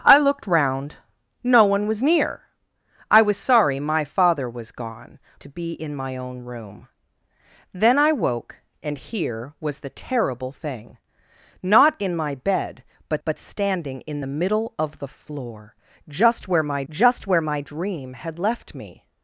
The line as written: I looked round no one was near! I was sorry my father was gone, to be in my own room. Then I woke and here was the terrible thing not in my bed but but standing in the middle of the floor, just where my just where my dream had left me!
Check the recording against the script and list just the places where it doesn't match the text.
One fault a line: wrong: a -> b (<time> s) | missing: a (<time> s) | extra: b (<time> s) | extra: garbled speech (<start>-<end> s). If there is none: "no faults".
no faults